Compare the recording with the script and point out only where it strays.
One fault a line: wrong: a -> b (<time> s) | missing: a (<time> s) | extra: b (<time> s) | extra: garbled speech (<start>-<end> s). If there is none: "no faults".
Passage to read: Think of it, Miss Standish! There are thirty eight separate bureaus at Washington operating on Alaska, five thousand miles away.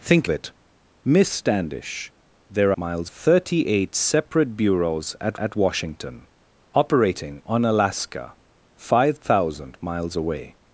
missing: of (0.3 s)
wrong: are -> miles (2.8 s)
extra: at (5.4 s)